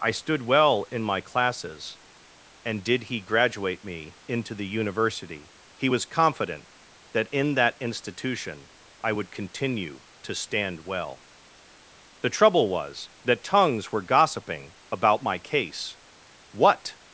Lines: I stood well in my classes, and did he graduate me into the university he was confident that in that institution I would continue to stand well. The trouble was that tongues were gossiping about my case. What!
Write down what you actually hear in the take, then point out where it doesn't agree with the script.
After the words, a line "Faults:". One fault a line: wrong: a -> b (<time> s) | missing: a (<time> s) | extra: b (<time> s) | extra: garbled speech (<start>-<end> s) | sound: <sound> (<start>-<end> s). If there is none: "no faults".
I stood well in my classes, and did he graduate me into the university he was confident that in that institution I would continue to stand well. The trouble was that tongues were gossiping about my case. What!
Faults:
no faults